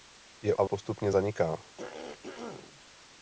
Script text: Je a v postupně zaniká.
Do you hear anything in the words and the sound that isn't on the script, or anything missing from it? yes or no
yes